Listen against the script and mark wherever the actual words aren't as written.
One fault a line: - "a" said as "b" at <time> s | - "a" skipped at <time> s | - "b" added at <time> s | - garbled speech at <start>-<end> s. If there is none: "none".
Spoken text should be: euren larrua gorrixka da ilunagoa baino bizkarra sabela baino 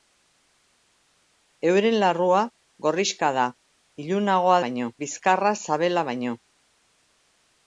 none